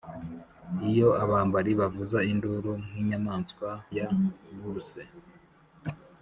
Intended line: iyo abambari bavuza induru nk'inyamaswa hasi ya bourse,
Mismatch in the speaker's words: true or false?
true